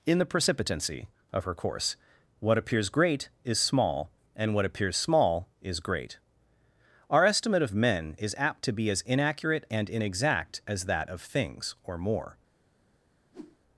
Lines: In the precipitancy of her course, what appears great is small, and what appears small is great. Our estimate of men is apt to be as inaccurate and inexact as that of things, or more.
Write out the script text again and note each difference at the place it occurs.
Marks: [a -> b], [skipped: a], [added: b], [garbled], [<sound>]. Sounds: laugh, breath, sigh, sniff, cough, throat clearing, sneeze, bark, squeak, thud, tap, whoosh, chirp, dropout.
In the precipitancy of her course, what appears great is small, and what appears small is great. Our estimate of men is apt to be as inaccurate and inexact as that of things, or more. [whoosh]